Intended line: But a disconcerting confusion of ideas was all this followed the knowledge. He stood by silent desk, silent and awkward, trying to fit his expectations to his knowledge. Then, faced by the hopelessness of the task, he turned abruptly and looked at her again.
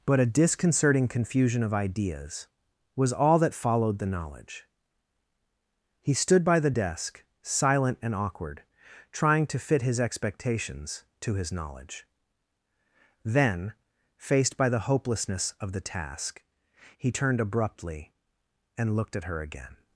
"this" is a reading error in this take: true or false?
true